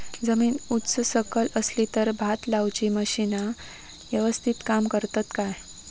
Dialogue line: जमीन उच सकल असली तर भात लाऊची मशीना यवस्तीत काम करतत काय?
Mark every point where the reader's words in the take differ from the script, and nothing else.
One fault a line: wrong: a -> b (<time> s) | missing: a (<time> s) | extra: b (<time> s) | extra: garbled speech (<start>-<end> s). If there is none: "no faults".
no faults